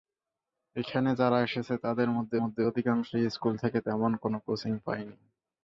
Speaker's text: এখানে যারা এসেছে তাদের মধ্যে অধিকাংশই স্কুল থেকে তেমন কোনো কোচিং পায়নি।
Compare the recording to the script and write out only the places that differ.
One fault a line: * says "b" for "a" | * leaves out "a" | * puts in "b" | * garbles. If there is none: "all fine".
* puts in "মধ্যে"